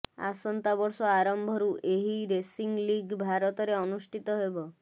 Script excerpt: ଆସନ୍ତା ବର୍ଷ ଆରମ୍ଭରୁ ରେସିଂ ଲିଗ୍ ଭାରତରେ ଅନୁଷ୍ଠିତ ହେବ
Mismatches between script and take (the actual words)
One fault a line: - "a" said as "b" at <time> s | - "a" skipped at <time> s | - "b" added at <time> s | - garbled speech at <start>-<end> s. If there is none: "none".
- "ଏହି" added at 1.9 s